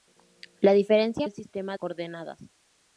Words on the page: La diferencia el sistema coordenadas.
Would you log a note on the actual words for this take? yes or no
no